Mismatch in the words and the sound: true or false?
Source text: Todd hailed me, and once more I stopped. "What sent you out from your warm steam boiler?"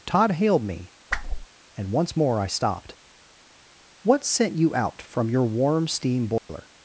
true